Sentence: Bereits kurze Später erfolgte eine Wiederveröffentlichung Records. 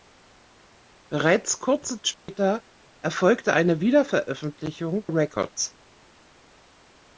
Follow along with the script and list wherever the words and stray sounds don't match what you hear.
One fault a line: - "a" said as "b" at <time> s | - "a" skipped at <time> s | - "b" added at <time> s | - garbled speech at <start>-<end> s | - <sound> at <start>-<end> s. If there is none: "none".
- dropout at 2.1-2.3 s